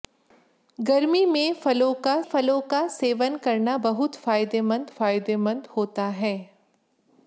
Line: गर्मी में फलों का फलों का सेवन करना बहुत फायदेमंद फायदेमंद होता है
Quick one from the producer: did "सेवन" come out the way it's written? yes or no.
yes